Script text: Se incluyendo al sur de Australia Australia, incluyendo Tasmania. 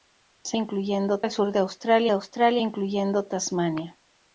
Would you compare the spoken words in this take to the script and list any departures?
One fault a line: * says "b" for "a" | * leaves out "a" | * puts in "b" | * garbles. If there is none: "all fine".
all fine